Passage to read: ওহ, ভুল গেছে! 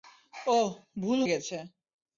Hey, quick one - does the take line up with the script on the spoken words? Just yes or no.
yes